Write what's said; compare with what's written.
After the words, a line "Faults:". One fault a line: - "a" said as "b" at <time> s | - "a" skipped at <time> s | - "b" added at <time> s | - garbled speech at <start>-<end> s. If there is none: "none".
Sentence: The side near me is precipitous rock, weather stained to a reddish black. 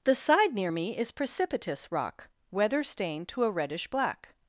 The side near me is precipitous rock, weather stained to a reddish black.
Faults:
none